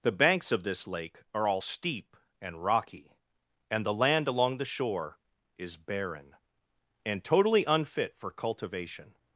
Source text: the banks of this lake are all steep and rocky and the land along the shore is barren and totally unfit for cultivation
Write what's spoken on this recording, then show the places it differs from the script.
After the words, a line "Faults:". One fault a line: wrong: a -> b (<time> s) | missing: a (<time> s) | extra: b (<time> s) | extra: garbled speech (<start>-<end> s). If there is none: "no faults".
the banks of this lake are all steep and rocky and the land along the shore is barren and totally unfit for cultivation
Faults:
no faults